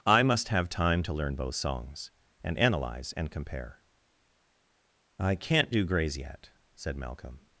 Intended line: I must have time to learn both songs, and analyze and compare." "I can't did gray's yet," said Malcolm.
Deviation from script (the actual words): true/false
true